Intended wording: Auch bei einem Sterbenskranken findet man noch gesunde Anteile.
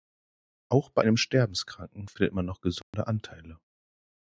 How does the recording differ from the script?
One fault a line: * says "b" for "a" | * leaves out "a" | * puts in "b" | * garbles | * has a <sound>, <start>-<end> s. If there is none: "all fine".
* has a dropout, 2.8-2.9 s